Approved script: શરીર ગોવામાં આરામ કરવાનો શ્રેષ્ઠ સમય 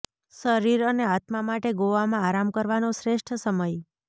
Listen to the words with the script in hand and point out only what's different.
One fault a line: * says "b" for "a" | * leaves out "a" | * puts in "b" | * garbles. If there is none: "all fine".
* puts in "અને આત્મા માટે"